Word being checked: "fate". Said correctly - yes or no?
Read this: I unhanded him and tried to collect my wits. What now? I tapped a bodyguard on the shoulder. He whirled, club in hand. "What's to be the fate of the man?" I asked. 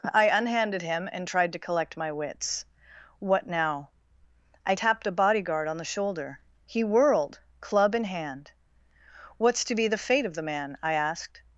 yes